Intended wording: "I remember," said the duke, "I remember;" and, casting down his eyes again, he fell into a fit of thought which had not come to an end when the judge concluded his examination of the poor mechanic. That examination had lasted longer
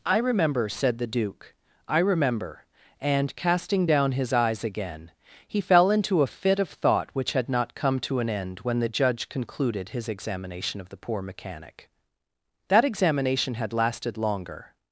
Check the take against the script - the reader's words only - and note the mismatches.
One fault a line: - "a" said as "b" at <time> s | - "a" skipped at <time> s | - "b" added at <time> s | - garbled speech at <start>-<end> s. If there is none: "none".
none